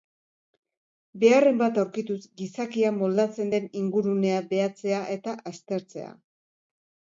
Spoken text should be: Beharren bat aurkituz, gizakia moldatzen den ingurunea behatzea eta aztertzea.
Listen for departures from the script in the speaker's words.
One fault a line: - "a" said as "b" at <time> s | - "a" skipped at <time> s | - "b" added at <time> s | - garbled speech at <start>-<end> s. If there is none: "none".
none